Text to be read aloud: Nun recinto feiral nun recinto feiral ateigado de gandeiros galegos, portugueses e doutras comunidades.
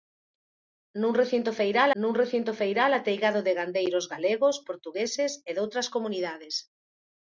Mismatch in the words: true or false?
false